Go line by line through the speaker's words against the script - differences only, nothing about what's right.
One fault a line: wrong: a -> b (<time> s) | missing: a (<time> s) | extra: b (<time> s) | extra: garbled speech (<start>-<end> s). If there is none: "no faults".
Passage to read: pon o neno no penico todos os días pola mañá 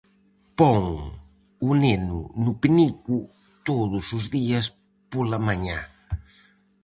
no faults